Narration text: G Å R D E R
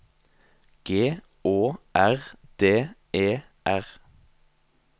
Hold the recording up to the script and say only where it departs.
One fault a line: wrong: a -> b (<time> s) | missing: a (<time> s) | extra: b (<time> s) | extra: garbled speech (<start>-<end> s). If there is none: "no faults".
no faults